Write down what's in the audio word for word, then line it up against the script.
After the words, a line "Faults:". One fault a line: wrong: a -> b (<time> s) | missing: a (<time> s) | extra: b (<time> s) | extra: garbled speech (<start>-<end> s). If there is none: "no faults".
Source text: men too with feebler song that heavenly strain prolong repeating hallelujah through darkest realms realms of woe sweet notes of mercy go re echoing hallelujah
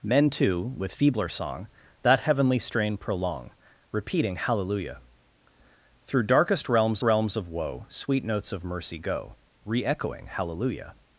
men too with feebler song that heavenly strain prolong repeating hallelujah through darkest realms realms of woe sweet notes of mercy go re echoing hallelujah
Faults:
no faults